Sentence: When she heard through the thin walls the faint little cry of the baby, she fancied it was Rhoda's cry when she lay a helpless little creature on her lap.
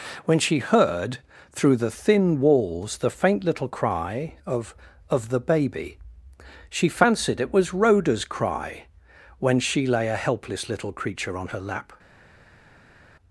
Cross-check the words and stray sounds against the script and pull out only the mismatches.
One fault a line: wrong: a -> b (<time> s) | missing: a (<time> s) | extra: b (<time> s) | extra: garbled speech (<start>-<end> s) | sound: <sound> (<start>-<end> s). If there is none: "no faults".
extra: of (5.1 s)